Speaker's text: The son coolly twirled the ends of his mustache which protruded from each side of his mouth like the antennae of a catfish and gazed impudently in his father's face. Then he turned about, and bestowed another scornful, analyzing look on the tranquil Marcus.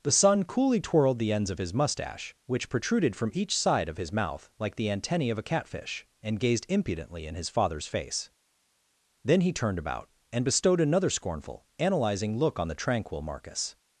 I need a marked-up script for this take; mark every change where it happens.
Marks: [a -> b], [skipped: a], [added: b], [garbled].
The son coolly twirled the ends of his mustache which protruded from each side of his mouth like the antennae of a catfish and gazed impudently in his father's face. Then he turned about, and bestowed another scornful, analyzing look on the tranquil Marcus.